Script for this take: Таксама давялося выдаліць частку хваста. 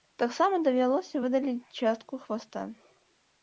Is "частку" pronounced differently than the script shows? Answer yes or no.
no